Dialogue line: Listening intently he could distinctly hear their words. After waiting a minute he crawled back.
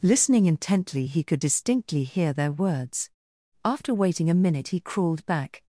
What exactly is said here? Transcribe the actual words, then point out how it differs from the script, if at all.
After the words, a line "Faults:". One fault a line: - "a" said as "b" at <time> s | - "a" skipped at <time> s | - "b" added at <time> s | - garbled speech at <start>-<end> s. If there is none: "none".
Listening intently he could distinctly hear their words. After waiting a minute he crawled back.
Faults:
none